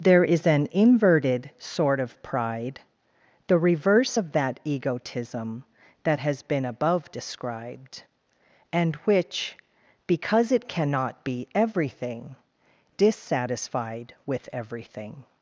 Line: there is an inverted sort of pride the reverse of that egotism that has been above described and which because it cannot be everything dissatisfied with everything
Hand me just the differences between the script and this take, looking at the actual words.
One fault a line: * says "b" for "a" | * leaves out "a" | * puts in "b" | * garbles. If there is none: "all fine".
all fine